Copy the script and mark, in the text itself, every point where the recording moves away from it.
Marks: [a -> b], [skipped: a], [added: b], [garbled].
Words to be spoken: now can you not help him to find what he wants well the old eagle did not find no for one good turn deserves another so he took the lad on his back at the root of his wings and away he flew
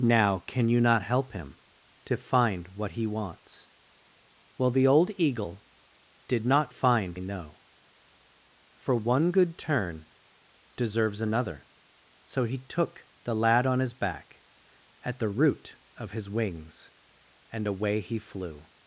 now can you not help him to find what he wants well the old eagle did not find no for one good turn deserves another so he took the lad on his back at the root of his wings and away he flew